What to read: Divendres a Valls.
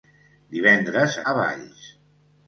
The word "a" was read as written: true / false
true